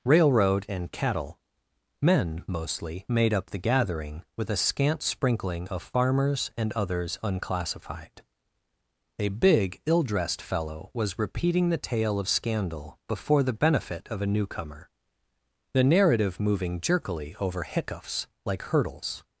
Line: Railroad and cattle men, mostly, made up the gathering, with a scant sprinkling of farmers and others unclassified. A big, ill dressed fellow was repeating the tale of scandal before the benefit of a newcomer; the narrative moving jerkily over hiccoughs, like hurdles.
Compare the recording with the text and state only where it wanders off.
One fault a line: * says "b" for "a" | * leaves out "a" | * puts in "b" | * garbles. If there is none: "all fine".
all fine